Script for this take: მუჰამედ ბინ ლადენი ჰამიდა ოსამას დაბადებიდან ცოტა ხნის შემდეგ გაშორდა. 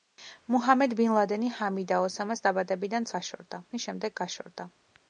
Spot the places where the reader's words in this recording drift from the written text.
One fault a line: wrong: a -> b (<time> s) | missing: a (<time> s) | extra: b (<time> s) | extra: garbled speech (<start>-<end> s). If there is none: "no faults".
wrong: ცოტა -> გაშორდა (3.2 s)